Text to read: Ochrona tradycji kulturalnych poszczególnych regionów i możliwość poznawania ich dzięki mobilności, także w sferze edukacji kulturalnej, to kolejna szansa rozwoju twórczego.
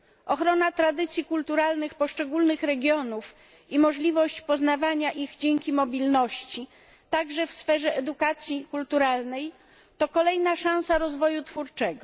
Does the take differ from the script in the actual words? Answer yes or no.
no